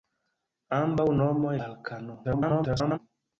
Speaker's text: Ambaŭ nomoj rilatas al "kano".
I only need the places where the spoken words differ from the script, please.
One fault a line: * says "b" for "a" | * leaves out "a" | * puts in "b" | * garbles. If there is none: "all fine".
* leaves out "rilatas"
* garbles